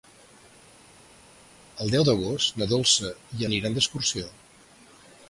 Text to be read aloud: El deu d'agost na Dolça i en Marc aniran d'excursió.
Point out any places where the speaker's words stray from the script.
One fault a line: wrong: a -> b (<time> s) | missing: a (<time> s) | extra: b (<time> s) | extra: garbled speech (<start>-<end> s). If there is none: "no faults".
missing: en Marc (3.5 s)